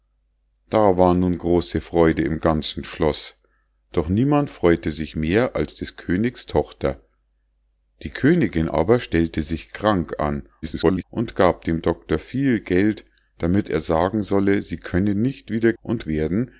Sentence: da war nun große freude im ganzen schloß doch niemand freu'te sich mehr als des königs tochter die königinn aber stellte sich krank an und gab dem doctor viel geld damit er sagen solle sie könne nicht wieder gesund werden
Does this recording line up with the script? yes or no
no